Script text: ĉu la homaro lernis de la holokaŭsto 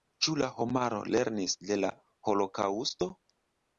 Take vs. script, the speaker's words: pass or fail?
pass